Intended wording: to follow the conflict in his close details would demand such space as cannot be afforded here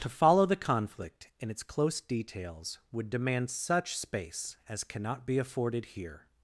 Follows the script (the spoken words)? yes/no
no